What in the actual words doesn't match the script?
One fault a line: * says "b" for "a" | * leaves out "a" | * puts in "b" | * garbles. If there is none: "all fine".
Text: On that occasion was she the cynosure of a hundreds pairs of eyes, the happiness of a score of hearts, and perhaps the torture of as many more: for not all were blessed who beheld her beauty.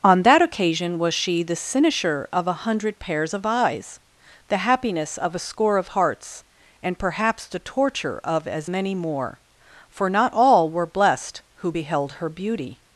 * says "hundred" for "hundreds"